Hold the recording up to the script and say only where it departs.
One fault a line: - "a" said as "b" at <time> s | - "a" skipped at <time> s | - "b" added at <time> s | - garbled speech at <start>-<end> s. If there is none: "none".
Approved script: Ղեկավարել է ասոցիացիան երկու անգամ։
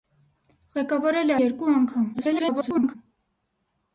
- "ասոցիացիան" skipped at 1.4 s
- garbled speech at 2.1-3.0 s